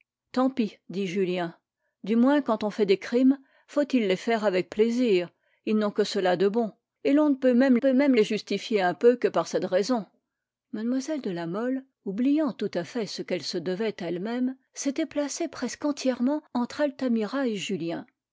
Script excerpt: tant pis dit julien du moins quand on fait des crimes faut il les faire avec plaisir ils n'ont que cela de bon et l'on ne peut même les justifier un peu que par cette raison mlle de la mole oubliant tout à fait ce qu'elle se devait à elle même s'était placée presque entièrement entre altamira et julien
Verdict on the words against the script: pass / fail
fail